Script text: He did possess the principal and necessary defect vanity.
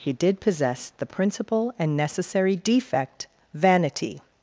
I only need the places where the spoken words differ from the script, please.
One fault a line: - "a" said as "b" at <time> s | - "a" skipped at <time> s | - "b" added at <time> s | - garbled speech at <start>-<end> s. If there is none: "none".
none